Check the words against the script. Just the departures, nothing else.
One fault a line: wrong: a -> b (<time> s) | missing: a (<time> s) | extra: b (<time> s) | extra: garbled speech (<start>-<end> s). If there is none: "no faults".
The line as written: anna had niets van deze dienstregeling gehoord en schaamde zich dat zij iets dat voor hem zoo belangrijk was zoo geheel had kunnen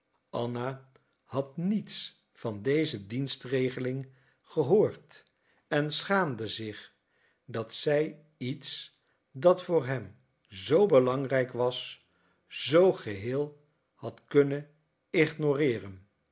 no faults